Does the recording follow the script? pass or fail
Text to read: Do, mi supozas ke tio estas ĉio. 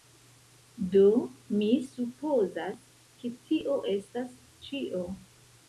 pass